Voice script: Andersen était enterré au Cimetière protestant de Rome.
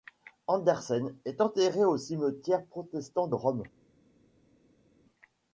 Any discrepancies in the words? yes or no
yes